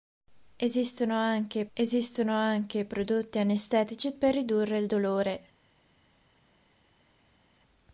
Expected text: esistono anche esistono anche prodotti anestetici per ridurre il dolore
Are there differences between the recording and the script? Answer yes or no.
no